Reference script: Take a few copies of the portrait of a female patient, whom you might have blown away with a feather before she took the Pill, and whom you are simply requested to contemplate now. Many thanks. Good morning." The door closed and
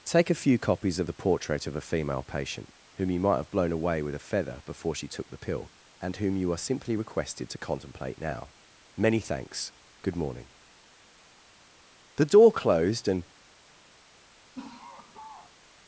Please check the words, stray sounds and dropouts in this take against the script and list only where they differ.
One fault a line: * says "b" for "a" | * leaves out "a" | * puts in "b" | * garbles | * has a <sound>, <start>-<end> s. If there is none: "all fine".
* has a laugh, 14.5-15.6 s